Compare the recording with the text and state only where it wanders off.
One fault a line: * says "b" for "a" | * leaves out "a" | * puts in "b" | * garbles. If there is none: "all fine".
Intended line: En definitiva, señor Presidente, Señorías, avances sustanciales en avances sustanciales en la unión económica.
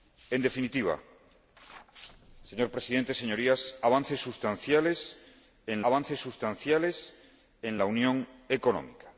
all fine